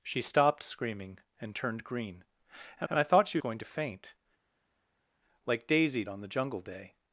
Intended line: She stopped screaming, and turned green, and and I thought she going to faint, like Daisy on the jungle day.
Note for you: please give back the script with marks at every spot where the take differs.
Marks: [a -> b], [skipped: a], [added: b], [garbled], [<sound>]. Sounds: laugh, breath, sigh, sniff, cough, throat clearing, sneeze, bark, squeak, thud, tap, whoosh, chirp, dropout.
She stopped screaming, and turned green, and and I thought she going to faint, like Daisy on the jungle day.